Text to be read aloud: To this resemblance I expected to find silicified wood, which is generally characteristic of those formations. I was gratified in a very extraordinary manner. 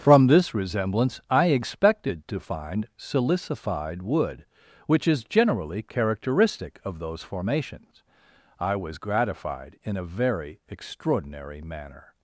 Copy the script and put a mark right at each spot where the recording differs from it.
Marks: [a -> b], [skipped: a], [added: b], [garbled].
[To -> From] this resemblance I expected to find silicified wood, which is generally characteristic of those formations. I was gratified in a very extraordinary manner.